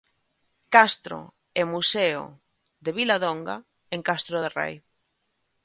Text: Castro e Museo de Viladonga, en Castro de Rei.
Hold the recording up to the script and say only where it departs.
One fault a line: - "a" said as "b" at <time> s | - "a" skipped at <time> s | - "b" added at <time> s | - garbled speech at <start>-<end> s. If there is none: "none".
none